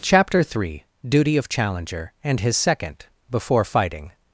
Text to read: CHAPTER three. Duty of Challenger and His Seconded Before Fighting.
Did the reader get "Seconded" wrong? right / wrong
wrong